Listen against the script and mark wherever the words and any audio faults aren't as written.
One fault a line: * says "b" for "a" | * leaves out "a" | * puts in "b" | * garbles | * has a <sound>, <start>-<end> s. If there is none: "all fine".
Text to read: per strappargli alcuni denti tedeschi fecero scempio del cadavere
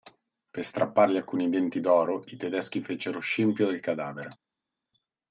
* puts in "d'oro i"